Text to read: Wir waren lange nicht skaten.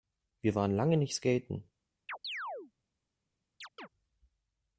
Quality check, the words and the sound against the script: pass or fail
fail